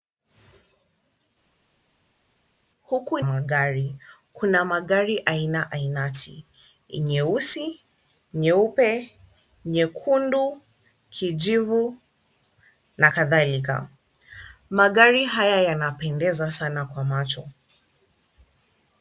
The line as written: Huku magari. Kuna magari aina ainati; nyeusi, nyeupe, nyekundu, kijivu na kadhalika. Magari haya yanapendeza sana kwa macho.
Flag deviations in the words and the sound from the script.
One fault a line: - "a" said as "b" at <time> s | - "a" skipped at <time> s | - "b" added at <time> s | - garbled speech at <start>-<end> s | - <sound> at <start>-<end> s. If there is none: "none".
none